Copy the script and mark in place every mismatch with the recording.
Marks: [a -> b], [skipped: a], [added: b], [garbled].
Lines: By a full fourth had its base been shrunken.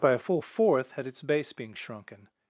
By a full fourth had its base [been -> being] shrunken.